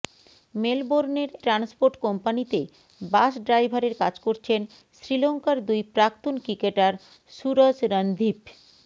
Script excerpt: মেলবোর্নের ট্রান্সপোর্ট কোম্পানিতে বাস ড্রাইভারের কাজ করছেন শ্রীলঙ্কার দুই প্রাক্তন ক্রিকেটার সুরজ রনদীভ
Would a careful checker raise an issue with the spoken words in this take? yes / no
no